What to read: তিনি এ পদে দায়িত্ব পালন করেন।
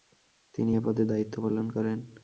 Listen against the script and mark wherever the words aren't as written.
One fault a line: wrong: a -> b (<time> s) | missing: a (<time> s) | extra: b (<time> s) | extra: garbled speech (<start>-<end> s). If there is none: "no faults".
no faults